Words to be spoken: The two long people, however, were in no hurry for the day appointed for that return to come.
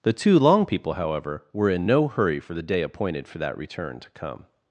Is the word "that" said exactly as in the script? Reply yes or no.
yes